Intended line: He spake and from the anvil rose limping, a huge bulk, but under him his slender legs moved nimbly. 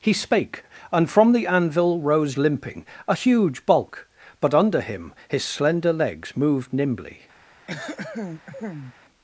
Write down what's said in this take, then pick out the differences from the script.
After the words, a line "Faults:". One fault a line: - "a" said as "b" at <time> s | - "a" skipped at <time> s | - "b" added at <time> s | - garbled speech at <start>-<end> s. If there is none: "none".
He spake and from the anvil rose limping, a huge bulk, but under him his slender legs moved nimbly.
Faults:
none